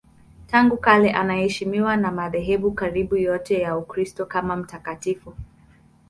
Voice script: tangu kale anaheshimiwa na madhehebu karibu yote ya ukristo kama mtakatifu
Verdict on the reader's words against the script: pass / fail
pass